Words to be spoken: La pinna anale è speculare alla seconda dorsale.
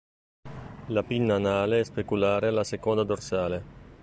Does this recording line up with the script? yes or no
yes